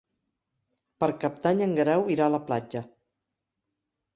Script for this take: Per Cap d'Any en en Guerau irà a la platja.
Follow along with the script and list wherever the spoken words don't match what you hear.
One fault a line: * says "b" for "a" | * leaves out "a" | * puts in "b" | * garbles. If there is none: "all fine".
* leaves out "en"